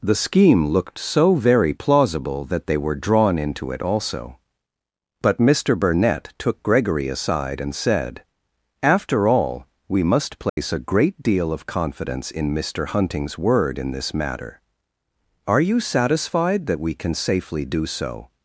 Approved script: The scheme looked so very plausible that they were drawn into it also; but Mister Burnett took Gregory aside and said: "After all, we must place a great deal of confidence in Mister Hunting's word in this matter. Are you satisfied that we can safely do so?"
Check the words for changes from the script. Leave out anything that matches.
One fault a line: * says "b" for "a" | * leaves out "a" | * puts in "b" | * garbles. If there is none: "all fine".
all fine